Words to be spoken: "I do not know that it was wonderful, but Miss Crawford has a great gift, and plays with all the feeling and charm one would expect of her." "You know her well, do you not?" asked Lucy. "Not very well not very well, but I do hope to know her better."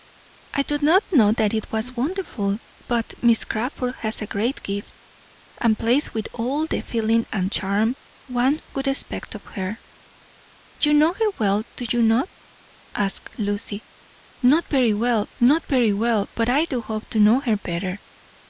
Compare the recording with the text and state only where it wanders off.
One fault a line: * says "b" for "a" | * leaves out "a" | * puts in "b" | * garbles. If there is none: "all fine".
all fine